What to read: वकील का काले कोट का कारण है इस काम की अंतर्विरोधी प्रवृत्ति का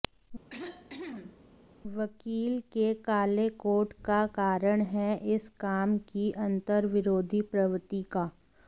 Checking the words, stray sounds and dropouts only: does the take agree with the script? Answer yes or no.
no